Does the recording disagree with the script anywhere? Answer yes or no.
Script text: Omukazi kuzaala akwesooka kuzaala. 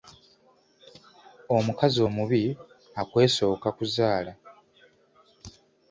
yes